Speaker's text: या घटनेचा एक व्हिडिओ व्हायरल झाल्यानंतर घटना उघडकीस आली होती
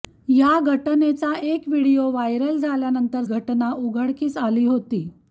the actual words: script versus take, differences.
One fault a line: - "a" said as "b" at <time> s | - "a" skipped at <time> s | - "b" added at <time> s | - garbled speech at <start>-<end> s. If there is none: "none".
none